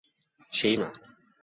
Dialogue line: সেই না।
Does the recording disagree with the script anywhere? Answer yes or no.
no